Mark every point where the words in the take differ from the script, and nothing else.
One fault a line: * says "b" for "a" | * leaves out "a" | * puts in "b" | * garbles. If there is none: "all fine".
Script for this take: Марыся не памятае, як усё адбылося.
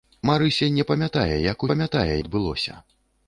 * says "памятае" for "усё"